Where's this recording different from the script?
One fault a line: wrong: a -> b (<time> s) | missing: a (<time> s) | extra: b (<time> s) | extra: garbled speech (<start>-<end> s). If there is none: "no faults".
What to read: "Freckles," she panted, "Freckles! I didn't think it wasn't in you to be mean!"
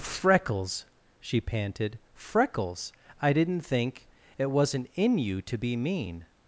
no faults